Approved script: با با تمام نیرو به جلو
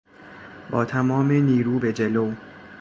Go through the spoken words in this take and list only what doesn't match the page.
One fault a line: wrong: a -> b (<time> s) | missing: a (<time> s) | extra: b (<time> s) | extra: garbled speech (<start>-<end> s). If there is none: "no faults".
missing: با (0.8 s)